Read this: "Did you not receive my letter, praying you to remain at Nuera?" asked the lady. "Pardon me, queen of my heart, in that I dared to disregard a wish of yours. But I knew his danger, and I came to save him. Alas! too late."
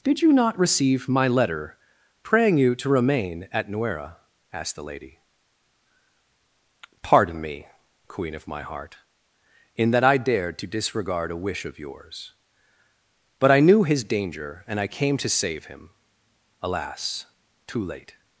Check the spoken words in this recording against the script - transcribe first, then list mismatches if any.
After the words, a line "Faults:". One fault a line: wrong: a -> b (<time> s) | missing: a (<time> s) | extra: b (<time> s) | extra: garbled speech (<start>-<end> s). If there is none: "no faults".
"Did you not receive my letter, praying you to remain at Nuera?" asked the lady. "Pardon me, queen of my heart, in that I dared to disregard a wish of yours. But I knew his danger, and I came to save him. Alas! too late."
Faults:
no faults